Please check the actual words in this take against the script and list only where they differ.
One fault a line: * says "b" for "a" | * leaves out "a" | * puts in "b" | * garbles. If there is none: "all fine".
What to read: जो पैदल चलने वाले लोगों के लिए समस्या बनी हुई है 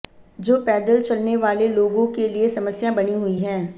all fine